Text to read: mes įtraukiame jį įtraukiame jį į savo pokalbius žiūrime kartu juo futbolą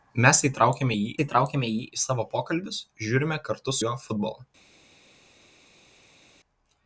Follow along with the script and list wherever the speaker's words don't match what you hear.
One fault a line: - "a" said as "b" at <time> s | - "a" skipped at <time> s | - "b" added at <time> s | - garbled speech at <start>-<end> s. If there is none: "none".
none